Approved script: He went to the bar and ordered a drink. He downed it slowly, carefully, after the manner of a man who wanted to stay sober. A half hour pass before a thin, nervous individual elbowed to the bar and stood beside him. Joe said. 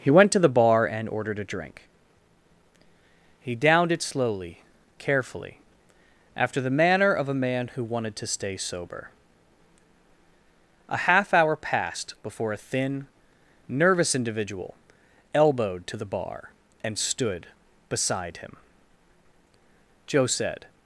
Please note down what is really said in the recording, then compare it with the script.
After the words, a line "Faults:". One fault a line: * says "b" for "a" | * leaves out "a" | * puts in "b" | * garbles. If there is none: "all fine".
He went to the bar and ordered a drink. He downed it slowly, carefully, after the manner of a man who wanted to stay sober. A half hour passed before a thin, nervous individual elbowed to the bar and stood beside him. Joe said.
Faults:
* says "passed" for "pass"